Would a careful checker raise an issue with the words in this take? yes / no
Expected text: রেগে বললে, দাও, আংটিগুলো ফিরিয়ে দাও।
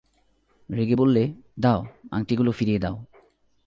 no